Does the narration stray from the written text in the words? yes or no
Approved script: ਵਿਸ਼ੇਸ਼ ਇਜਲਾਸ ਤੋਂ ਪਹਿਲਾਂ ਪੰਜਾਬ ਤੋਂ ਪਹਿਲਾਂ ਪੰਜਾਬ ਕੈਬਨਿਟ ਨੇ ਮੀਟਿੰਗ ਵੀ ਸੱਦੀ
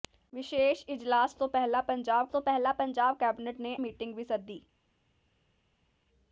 no